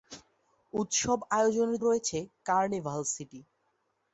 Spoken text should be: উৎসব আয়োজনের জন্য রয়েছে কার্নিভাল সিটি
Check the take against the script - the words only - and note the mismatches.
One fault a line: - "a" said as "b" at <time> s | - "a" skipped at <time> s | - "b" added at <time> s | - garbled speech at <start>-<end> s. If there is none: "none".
- "জন্য" skipped at 1.8 s